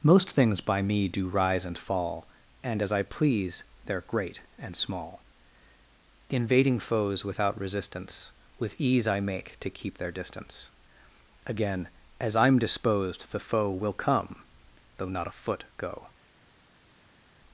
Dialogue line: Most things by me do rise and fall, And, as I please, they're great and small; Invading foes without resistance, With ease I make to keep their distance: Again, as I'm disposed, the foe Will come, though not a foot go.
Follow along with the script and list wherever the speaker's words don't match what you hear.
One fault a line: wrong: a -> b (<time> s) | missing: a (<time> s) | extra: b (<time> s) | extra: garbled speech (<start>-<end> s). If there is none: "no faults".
no faults